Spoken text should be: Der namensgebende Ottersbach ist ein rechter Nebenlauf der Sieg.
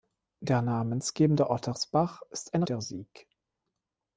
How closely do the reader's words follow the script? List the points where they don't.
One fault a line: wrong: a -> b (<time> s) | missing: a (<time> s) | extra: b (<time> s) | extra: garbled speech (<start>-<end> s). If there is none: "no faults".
missing: rechter Nebenlauf (2.6 s)